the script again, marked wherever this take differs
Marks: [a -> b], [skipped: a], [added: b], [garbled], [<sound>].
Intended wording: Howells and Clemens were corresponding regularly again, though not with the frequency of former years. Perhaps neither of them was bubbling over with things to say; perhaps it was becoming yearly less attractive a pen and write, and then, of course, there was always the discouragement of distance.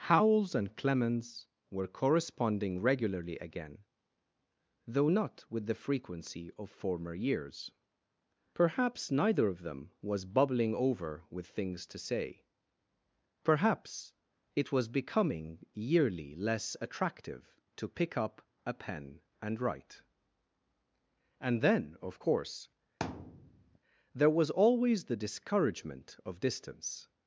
Howells and Clemens were corresponding regularly again, though not with the frequency of former years. Perhaps neither of them was bubbling over with things to say; perhaps it was becoming yearly less attractive [added: to pick up] a pen and write, and then, of course, [thud] there was always the discouragement of distance.